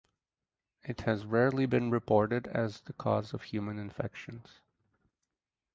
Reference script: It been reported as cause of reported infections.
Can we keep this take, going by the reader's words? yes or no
no